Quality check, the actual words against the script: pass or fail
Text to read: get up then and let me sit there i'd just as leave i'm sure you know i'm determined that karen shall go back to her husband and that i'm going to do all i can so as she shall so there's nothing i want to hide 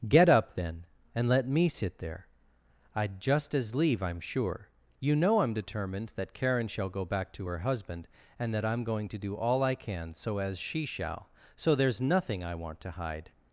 pass